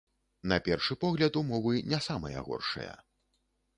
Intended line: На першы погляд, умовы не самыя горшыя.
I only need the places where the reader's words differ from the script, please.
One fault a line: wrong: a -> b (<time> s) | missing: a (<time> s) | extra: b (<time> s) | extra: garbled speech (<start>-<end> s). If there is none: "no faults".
no faults